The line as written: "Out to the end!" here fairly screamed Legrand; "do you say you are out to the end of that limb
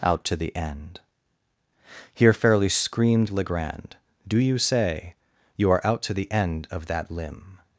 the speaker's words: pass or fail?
pass